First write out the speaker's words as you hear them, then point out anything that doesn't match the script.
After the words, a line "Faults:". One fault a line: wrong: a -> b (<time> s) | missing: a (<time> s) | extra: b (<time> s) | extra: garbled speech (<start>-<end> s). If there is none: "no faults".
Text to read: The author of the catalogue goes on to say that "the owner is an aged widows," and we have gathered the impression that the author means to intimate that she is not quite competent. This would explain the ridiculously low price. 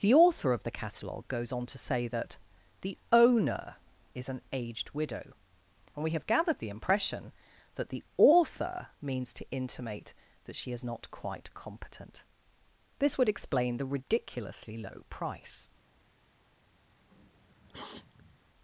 The author of the catalogue goes on to say that "the owner is an aged widow," and we have gathered the impression that the author means to intimate that she is not quite competent. This would explain the ridiculously low price.
Faults:
wrong: widows -> widow (5.0 s)